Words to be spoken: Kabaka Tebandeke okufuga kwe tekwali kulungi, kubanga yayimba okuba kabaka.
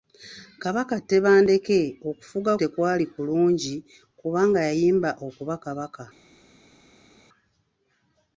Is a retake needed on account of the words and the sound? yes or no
yes